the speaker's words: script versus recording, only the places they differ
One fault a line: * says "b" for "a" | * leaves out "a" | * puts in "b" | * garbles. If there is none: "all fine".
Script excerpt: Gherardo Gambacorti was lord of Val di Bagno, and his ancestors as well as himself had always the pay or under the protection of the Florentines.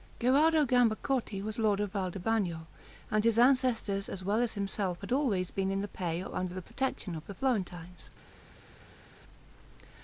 * puts in "been in"